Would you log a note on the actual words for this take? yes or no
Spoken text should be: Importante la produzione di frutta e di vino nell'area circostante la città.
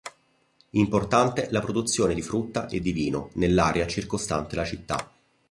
no